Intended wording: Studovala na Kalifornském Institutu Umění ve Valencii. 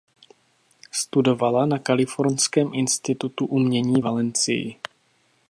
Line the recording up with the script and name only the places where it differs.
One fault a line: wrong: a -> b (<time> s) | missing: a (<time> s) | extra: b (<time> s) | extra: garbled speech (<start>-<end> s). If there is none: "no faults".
missing: ve (4.0 s)